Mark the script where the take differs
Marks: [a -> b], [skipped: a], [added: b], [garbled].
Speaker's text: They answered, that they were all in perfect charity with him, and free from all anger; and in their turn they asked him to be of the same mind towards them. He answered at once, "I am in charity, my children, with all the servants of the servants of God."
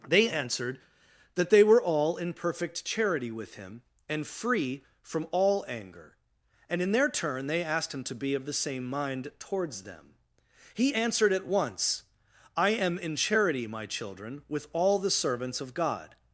They answered, that they were all in perfect charity with him, and free from all anger; and in their turn they asked him to be of the same mind towards them. He answered at once, "I am in charity, my children, with all the servants of [skipped: the servants of] God."